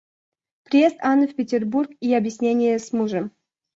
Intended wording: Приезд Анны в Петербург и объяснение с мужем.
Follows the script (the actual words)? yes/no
yes